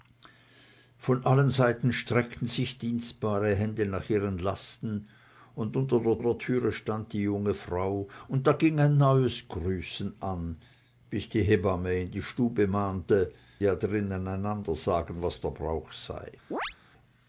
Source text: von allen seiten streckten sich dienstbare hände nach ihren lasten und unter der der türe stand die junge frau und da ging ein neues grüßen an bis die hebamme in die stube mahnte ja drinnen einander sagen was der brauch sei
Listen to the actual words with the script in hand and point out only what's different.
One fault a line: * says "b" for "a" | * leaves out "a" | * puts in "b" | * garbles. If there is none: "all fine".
all fine